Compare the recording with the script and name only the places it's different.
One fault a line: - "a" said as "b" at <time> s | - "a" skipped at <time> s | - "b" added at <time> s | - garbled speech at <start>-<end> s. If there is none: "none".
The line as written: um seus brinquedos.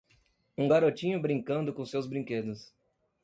- "garotinho brincando com" added at 0.6 s